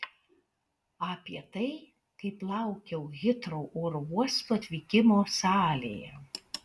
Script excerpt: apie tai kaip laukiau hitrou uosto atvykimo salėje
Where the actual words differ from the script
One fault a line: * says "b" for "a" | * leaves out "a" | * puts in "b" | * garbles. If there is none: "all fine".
* puts in "oro"